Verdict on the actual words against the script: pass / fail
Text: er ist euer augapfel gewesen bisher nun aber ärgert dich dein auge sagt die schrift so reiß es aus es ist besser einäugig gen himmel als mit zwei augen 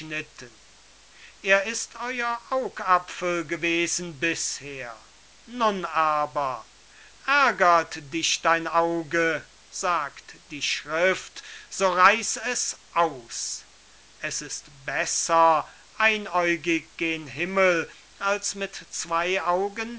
pass